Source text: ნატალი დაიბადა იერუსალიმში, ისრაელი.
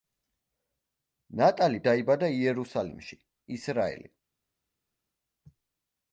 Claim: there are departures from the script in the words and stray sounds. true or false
false